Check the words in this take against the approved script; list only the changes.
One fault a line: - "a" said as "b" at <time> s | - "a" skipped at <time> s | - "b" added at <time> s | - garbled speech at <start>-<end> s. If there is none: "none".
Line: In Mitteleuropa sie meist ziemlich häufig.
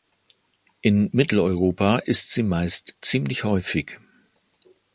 - "ist" added at 2.0 s